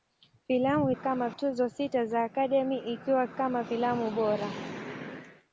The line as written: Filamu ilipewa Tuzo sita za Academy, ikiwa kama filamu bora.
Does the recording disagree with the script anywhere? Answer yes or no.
yes